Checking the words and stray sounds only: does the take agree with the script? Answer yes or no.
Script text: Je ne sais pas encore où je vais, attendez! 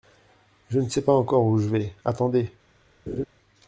no